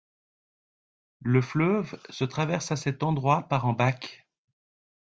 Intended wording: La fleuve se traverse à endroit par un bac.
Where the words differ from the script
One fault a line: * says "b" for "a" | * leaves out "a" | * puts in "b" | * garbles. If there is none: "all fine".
* says "Le" for "La"
* puts in "cet"